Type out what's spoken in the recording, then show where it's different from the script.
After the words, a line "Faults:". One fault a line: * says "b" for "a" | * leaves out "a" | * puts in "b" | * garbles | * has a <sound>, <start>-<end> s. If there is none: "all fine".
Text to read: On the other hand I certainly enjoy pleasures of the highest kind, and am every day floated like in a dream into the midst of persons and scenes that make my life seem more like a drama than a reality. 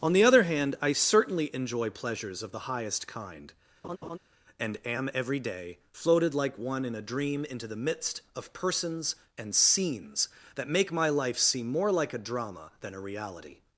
On the other hand I certainly enjoy pleasures of the highest kind, and am every day floated like one in a dream into the midst of persons and scenes that make my life seem more like a drama than a reality.
Faults:
* has a laugh, 3.8-4.2 s
* puts in "one"